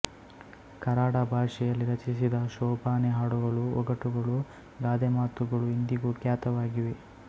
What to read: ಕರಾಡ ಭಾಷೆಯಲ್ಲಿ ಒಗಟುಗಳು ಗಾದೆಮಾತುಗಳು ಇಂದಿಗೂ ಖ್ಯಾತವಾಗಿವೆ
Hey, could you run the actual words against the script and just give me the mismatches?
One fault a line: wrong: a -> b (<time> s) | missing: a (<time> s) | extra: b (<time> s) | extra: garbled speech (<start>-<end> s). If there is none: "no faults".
extra: ರಚಿಸಿದ ಶೋಭಾನೆ ಹಾಡುಗಳು (1.9 s)